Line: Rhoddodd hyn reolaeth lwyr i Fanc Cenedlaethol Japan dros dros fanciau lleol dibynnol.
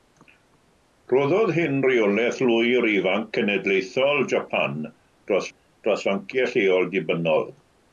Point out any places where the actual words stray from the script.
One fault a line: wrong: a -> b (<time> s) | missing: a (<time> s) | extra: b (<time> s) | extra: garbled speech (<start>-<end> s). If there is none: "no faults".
no faults